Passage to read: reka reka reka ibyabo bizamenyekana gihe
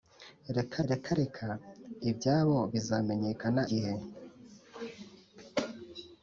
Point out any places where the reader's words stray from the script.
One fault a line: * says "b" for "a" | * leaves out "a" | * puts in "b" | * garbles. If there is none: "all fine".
all fine